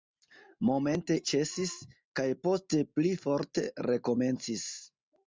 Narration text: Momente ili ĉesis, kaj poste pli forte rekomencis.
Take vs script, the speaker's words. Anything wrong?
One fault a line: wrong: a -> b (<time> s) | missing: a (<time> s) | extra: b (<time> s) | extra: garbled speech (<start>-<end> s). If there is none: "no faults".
missing: ili (1.2 s)